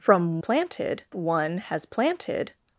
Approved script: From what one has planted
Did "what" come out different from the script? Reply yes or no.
yes